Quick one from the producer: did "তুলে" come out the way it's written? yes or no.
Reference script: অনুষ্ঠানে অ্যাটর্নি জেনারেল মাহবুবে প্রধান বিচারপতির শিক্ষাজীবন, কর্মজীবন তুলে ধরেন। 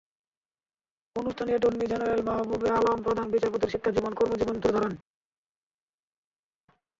yes